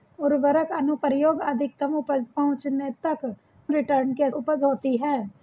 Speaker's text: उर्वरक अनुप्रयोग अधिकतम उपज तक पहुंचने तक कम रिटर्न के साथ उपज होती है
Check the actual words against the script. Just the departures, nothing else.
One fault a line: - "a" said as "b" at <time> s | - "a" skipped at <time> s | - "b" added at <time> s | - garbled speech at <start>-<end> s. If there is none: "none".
- "तक" skipped at 2.2 s
- "कम" skipped at 3.4 s
- "साथ" skipped at 4.3 s